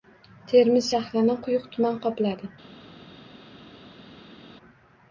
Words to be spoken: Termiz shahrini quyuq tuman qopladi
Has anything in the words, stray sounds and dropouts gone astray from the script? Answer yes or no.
no